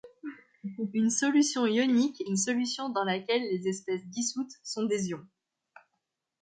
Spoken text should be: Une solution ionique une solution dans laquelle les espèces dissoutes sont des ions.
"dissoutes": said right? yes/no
yes